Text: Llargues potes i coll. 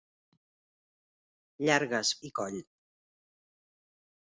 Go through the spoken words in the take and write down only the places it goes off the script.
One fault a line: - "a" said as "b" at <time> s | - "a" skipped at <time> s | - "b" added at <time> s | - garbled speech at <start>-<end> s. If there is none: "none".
- "potes" skipped at 2.1 s